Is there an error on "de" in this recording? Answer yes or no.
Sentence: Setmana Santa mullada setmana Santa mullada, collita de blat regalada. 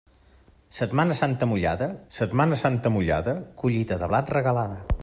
no